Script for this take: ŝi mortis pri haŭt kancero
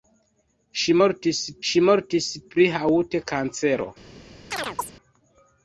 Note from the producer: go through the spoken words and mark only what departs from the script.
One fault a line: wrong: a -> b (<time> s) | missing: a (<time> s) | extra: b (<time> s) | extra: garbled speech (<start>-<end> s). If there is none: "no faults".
extra: ŝi mortis (1.7 s)